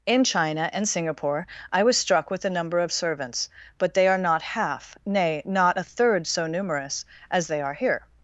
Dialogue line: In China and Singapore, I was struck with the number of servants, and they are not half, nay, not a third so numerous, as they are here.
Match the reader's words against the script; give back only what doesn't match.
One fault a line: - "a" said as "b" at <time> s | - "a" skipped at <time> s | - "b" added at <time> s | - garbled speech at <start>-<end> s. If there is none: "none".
- "and" said as "but" at 3.8 s